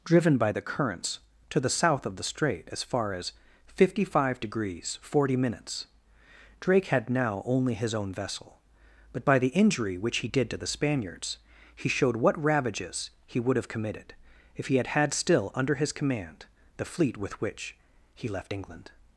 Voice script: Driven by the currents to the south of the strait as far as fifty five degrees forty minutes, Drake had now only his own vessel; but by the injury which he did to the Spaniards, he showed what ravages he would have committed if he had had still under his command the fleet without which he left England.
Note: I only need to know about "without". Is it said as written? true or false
false